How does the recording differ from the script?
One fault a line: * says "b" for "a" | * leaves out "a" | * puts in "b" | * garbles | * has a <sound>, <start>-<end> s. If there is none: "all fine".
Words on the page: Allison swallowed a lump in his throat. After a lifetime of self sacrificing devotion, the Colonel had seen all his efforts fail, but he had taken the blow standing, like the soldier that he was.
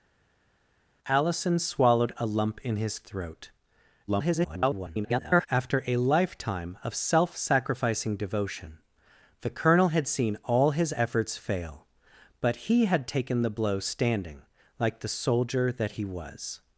* garbles